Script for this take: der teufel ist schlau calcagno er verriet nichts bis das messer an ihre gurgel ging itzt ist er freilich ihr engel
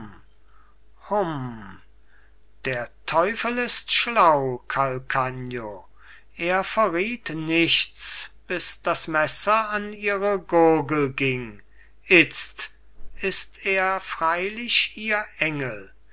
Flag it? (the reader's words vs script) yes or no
no